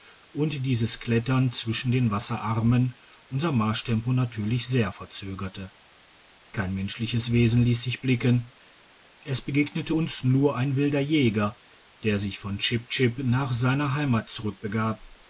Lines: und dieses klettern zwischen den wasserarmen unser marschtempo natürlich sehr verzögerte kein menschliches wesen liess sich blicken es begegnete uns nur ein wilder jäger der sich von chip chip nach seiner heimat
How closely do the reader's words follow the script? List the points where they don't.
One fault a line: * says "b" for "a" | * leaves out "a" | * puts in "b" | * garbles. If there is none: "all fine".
all fine